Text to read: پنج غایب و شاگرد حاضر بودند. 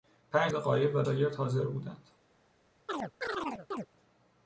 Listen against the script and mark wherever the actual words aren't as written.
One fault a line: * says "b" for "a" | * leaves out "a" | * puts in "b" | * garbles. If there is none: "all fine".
all fine